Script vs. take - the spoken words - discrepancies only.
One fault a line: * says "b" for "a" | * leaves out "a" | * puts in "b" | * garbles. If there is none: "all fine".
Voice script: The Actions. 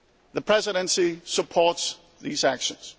* puts in "Presidency supports these"